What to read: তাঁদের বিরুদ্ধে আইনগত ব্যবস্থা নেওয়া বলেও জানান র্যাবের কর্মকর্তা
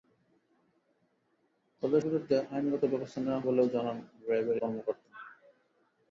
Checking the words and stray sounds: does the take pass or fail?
pass